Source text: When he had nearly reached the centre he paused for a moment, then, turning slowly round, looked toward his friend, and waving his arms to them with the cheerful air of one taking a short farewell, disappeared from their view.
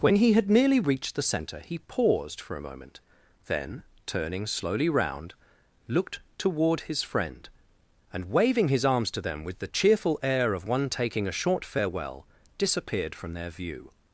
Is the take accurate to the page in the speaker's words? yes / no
yes